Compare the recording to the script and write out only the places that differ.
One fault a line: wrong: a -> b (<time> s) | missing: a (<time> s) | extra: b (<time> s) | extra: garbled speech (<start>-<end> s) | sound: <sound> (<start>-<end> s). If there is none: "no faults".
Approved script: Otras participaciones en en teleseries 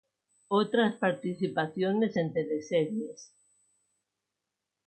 missing: en (2.3 s)